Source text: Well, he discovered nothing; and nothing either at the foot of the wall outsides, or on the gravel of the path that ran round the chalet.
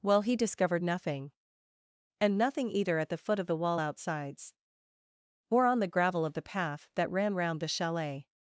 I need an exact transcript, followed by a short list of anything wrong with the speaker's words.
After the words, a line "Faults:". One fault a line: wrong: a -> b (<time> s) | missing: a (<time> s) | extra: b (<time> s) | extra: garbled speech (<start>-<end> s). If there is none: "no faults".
Well, he discovered nothing; and nothing either at the foot of the wall outsides, or on the gravel of the path that ran round the chalet.
Faults:
no faults